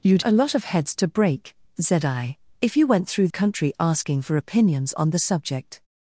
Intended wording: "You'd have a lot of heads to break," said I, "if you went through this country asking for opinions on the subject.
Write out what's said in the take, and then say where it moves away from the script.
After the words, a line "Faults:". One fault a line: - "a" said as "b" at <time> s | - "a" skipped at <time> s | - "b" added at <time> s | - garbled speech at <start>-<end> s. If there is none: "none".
"You'd a lot of heads to break," said I, "if you went through country asking for opinions on the subject.
Faults:
- "have" skipped at 0.2 s
- "this" skipped at 3.3 s